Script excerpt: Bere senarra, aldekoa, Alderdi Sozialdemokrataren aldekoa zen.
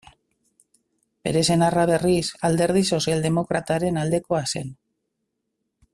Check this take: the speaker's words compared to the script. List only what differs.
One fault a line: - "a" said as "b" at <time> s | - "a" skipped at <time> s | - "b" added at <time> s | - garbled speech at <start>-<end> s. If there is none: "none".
- "aldekoa" said as "berriz" at 1.9 s